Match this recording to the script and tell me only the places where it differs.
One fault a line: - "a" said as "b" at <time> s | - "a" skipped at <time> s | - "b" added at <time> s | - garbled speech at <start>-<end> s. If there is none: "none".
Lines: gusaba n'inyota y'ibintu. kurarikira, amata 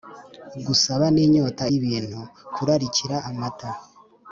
none